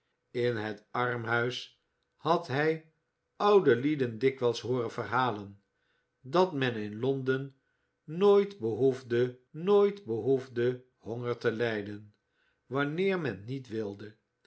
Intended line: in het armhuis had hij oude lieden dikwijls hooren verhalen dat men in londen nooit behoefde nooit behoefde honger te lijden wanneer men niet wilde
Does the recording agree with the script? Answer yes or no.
yes